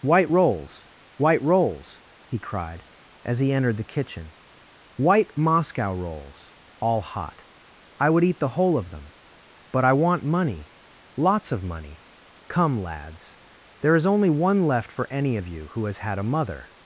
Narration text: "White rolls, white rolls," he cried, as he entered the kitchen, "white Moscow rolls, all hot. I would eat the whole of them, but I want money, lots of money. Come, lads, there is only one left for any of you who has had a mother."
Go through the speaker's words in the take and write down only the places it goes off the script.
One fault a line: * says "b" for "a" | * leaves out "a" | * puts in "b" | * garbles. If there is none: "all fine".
all fine